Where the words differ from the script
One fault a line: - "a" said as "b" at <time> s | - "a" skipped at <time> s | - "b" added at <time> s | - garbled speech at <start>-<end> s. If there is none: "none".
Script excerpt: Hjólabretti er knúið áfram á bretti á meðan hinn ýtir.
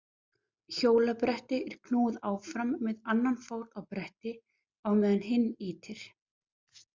- "með annan fót" added at 2.9 s